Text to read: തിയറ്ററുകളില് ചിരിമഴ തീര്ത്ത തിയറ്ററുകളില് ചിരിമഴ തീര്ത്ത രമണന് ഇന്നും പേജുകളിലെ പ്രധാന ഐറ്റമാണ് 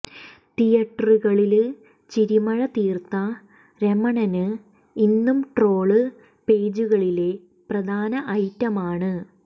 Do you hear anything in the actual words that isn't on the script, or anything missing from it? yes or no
yes